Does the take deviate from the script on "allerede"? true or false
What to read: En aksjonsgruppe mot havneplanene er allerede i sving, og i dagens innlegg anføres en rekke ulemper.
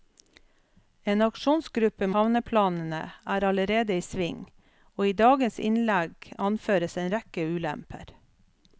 false